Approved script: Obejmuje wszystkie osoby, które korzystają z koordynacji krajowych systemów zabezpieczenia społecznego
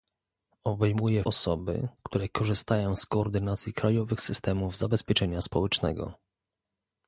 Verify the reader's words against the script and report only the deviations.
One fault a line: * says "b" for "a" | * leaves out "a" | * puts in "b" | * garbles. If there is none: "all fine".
* leaves out "wszystkie"